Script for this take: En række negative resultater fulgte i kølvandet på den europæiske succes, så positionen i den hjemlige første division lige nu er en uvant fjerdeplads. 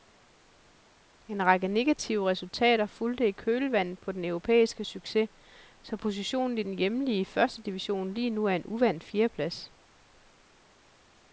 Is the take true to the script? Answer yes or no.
yes